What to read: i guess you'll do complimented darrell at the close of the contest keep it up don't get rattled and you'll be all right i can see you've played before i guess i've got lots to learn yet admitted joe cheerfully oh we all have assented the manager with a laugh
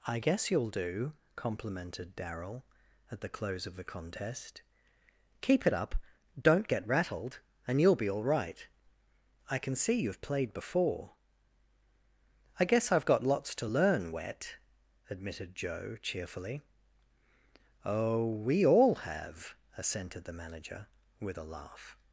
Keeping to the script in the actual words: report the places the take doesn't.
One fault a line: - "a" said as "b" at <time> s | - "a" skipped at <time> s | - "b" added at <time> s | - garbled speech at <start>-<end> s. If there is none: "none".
- "yet" said as "wet" at 14.1 s